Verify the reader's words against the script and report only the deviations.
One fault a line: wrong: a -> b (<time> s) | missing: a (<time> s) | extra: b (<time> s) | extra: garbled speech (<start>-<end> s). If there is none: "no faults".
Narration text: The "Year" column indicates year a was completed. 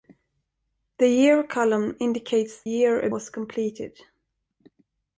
no faults